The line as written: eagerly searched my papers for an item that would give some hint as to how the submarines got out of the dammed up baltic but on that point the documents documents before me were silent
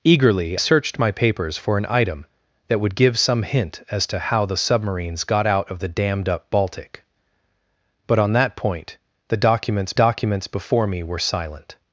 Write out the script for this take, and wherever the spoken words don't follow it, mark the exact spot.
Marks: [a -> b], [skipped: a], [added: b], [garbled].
eagerly searched my papers for an item that would give some hint as to how the submarines got out of the dammed up baltic but on that point the documents documents before me were silent